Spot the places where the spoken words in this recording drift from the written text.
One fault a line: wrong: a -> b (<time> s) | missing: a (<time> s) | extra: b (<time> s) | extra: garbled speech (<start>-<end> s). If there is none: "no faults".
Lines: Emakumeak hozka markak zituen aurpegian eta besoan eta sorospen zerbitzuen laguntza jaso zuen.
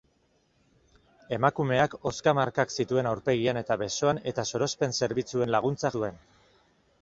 missing: jaso (5.9 s)